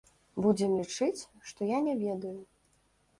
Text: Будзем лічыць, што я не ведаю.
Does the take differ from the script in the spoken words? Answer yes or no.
no